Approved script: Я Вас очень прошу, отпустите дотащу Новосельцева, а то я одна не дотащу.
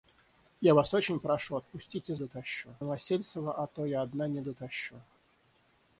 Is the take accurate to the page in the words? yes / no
yes